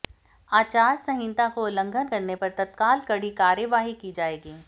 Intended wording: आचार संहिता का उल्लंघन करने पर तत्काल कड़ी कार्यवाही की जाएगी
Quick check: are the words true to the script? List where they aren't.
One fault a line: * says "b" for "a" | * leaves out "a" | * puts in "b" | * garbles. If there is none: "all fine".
all fine